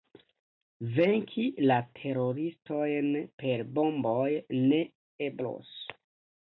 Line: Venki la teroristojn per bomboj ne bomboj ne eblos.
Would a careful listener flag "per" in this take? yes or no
no